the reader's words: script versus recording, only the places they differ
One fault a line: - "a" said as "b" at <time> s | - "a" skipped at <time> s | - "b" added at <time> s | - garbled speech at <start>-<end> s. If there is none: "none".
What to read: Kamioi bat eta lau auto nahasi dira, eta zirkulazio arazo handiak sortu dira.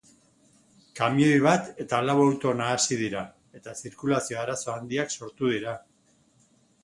none